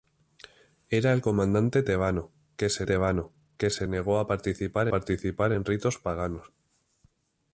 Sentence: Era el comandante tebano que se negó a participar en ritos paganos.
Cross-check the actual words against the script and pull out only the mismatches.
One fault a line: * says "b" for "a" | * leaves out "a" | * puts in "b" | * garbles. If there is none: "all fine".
* puts in "tebano que se"
* puts in "participar"